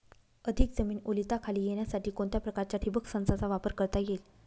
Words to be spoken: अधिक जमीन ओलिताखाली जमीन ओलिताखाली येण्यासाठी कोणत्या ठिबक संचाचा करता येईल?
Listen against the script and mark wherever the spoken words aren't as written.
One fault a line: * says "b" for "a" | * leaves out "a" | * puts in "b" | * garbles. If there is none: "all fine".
* leaves out "जमीन ओलिताखाली"
* puts in "प्रकारच्या"
* puts in "वापर"